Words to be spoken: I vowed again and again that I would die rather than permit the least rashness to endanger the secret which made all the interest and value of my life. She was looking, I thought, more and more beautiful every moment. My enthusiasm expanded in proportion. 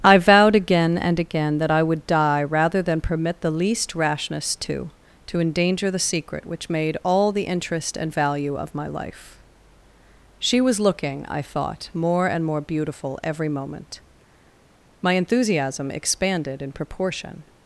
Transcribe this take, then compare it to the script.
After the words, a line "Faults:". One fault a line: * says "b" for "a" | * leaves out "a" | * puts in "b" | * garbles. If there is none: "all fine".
I vowed again and again that I would die rather than permit the least rashness to to endanger the secret which made all the interest and value of my life. She was looking, I thought, more and more beautiful every moment. My enthusiasm expanded in proportion.
Faults:
* puts in "to"